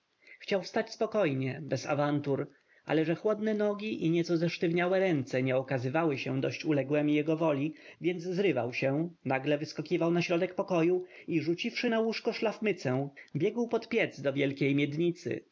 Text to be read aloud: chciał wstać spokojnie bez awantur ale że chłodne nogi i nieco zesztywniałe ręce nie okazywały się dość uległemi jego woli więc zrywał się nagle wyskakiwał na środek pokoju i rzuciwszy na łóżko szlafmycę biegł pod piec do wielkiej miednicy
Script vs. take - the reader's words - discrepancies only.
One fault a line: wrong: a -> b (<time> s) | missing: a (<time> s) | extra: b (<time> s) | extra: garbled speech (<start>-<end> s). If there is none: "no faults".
no faults